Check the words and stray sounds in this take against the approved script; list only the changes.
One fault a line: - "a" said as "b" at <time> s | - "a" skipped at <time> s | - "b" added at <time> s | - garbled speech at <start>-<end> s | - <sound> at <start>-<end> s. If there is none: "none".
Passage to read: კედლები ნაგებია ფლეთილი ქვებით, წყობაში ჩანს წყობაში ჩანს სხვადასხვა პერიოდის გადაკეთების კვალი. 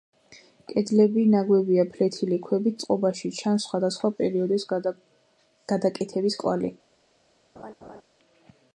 - "წყობაში ჩანს" skipped at 3.7 s
- laugh at 7.6-8.0 s